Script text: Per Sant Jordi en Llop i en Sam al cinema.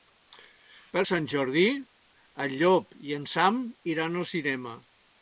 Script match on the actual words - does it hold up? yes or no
no